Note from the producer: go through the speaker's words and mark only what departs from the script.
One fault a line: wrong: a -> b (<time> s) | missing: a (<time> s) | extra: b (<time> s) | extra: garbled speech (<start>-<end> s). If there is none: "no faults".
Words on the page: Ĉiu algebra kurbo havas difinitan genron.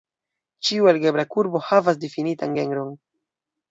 no faults